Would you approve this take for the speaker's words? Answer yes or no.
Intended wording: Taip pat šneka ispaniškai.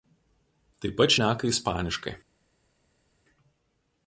yes